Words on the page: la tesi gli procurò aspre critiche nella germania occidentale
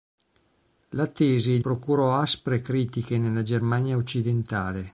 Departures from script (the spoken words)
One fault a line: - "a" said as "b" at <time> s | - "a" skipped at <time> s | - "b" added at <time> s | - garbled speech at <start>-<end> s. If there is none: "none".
- "gli" skipped at 1.6 s